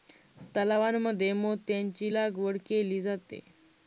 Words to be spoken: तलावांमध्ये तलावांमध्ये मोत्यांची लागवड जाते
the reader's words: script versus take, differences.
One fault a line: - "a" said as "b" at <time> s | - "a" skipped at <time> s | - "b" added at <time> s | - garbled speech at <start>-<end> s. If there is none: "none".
- "तलावांमध्ये" skipped at 1.3 s
- "केली" added at 2.7 s